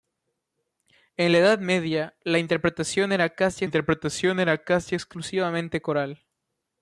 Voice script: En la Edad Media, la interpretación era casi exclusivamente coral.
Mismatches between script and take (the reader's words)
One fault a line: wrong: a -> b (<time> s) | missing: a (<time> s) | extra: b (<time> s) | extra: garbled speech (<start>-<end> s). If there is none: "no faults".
extra: interpretación era casi (3.6 s)